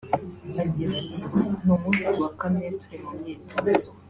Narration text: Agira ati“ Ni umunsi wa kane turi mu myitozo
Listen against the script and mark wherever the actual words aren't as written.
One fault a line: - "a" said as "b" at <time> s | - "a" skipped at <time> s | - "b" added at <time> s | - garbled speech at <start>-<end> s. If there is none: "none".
none